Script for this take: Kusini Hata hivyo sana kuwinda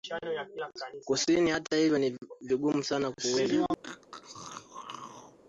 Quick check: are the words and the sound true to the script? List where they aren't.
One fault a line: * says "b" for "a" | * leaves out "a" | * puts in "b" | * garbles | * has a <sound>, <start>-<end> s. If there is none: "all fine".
* puts in "ni vigumu"
* has a throat clearing, 3.8-5.4 s